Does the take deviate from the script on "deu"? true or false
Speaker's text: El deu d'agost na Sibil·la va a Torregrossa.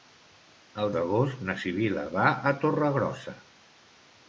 true